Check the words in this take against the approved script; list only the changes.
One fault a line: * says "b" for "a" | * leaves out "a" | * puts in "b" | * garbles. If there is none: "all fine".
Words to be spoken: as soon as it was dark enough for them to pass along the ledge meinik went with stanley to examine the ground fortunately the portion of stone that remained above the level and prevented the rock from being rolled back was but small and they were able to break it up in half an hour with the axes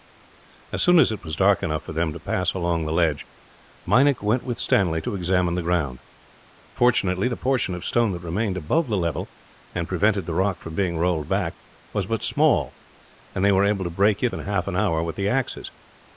* leaves out "up"